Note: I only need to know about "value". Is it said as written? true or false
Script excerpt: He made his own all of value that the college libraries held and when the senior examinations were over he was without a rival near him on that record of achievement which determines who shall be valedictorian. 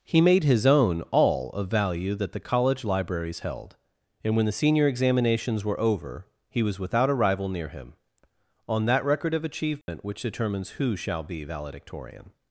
true